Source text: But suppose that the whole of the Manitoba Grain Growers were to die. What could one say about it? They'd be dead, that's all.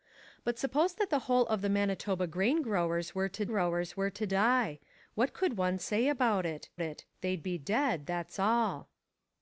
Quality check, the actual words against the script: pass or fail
fail